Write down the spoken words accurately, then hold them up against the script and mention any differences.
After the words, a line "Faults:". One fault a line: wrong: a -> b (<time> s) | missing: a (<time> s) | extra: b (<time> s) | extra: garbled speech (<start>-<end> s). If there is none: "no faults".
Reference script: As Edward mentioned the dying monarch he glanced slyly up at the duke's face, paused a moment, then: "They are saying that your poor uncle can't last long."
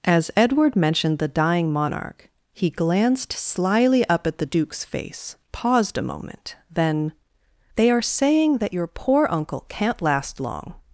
As Edward mentioned the dying monarch he glanced slyly up at the duke's face, paused a moment, then: "They are saying that your poor uncle can't last long."
Faults:
no faults